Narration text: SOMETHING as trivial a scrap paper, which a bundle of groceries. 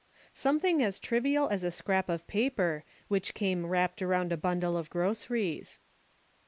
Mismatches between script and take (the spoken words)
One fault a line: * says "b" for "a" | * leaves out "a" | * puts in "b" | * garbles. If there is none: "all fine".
* puts in "as"
* puts in "of"
* puts in "came wrapped around"